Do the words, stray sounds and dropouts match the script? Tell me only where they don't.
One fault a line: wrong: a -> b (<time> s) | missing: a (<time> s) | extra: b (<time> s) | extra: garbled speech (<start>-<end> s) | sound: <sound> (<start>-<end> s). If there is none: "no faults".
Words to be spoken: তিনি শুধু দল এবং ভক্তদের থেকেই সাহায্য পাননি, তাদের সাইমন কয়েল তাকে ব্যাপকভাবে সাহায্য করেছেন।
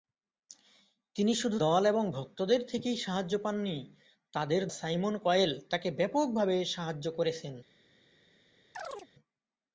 sound: chirp (8.7-9.1 s)